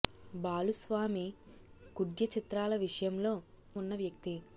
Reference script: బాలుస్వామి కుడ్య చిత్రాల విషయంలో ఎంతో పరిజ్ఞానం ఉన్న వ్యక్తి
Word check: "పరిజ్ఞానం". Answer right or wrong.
wrong